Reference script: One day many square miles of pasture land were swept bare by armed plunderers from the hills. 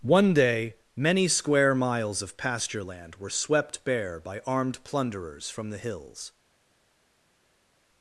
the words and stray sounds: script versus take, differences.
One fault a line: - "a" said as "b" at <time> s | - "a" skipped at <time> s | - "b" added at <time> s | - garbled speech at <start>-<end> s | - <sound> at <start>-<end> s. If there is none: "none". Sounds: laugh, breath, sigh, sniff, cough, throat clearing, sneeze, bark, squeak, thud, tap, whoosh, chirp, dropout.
none